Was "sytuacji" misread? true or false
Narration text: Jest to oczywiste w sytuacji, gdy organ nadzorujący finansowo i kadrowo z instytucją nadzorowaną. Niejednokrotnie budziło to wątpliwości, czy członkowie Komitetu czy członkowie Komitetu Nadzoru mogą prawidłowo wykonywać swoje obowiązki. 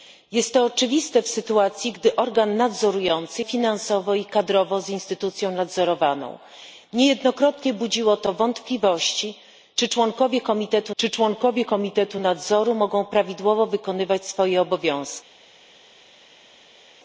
false